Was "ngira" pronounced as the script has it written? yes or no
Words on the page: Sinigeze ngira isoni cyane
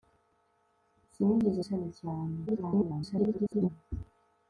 no